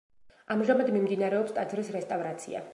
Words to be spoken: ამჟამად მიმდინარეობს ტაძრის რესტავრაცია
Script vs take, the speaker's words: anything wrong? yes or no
no